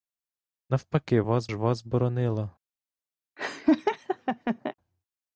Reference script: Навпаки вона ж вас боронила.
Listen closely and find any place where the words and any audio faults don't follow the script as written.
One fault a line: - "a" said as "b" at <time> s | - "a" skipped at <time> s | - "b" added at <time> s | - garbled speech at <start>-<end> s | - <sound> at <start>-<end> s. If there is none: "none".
- "вона" said as "вас" at 1.2 s
- laugh at 3.4-4.7 s